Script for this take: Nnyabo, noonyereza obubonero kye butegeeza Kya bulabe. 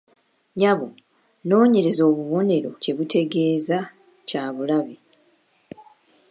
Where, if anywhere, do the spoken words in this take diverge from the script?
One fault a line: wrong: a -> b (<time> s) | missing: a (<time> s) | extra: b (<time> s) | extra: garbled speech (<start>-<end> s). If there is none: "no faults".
no faults